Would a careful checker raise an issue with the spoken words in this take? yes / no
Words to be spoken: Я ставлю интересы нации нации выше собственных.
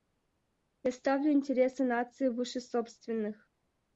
yes